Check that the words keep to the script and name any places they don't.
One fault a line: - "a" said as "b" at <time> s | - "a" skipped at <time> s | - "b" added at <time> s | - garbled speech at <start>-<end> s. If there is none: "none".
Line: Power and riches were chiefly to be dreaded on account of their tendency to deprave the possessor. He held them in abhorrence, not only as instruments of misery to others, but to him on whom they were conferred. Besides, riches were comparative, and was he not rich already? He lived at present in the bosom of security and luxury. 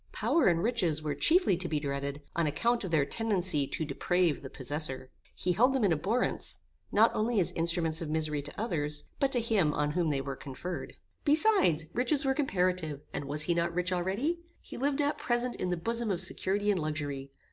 none